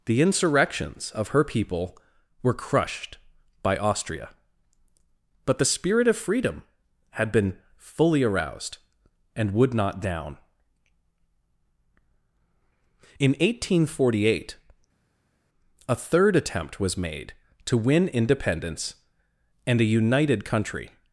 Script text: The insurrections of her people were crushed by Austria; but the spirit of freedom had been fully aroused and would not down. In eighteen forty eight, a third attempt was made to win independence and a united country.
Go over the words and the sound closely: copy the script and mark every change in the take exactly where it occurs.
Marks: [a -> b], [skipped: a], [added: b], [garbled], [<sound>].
The insurrections of her people were crushed by Austria; but the spirit of freedom had been fully aroused and would not down. In eighteen forty eight, a third attempt was made to win independence and a united country.